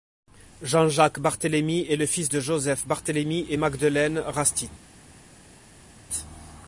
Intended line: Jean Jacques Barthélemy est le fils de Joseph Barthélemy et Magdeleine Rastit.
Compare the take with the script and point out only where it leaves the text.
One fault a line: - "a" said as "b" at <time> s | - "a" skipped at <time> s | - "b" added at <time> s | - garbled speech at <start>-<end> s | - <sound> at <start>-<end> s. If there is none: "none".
none